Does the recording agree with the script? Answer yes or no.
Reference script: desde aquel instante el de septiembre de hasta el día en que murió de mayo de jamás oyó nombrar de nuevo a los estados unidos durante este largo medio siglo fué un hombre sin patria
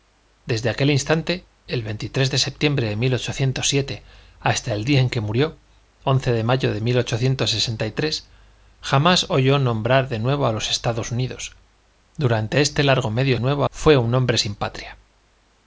no